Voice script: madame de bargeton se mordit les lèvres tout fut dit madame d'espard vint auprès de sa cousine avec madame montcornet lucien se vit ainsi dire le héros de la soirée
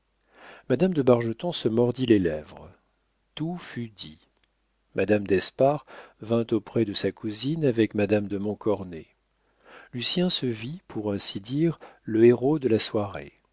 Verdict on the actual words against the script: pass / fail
fail